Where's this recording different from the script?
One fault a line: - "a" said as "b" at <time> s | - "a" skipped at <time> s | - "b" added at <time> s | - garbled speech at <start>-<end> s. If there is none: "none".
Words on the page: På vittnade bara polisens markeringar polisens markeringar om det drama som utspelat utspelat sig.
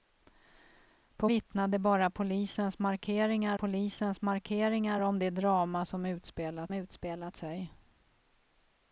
none